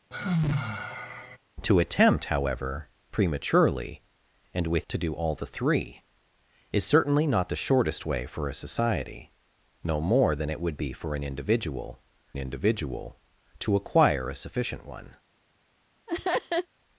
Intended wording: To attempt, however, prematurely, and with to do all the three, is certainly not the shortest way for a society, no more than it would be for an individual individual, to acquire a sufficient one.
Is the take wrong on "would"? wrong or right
right